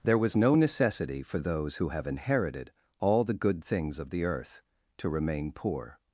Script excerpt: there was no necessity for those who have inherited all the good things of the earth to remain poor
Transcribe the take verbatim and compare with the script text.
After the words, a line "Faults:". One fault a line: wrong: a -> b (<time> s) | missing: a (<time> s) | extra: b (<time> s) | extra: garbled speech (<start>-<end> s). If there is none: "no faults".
there was no necessity for those who have inherited all the good things of the earth to remain poor
Faults:
no faults